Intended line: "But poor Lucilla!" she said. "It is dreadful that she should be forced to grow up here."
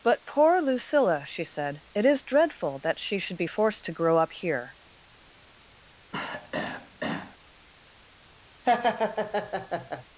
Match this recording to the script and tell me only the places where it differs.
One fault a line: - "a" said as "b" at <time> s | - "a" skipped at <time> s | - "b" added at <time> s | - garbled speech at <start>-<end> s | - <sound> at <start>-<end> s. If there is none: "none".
- throat clearing at 6.1-7.4 s
- laugh at 8.6-10.0 s